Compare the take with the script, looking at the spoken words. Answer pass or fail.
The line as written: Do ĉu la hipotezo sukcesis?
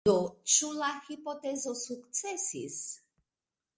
pass